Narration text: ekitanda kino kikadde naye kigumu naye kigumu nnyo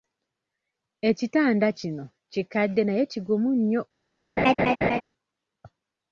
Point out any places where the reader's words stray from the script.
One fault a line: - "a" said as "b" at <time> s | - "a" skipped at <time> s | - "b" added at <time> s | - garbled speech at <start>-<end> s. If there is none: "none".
- "naye kigumu" skipped at 3.5 s